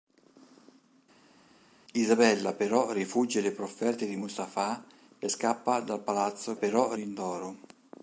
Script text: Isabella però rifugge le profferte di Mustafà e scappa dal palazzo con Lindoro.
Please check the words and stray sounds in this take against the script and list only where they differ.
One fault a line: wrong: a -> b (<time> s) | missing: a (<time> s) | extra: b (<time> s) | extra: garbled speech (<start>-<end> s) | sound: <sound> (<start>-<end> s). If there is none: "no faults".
wrong: con -> però (6.5 s)